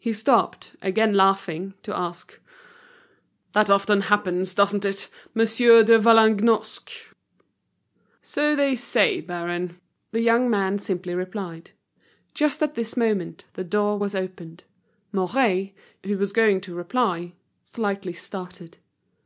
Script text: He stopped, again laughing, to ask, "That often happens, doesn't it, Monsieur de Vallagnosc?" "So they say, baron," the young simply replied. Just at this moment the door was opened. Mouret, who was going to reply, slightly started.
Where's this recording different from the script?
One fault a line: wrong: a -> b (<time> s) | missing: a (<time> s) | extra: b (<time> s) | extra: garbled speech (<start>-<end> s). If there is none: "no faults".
extra: man (10.5 s)